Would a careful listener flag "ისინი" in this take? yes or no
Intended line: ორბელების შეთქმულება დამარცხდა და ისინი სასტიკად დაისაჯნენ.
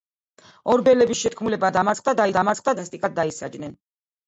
yes